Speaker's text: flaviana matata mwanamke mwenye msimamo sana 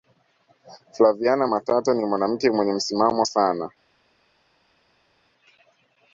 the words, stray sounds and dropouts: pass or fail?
fail